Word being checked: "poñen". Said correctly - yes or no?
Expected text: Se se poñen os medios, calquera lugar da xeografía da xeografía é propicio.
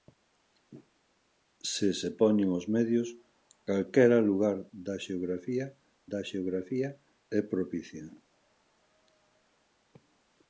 yes